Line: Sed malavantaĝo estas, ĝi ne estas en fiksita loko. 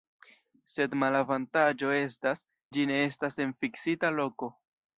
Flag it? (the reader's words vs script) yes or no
no